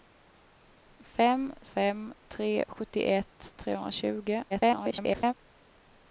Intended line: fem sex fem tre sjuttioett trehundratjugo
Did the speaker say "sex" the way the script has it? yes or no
no